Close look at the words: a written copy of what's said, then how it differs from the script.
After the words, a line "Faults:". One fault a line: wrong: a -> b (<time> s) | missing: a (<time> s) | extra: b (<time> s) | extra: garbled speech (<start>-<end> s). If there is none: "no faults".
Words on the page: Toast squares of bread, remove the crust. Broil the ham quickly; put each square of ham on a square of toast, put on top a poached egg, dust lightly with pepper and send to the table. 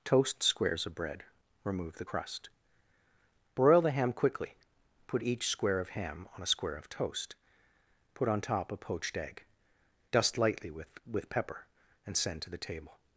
Toast squares of bread, remove the crust. Broil the ham quickly; put each square of ham on a square of toast, put on top a poached egg, dust lightly with with pepper and send to the table.
Faults:
extra: with (11.0 s)